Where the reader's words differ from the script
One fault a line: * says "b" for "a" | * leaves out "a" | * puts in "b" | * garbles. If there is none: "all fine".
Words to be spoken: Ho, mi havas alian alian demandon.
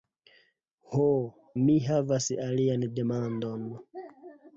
* leaves out "alian"